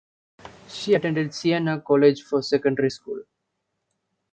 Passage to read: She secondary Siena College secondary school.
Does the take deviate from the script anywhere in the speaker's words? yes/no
yes